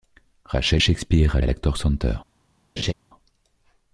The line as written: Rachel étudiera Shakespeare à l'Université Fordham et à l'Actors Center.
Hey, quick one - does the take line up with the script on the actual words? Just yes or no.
no